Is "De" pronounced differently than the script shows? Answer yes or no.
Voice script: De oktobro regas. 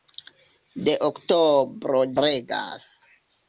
no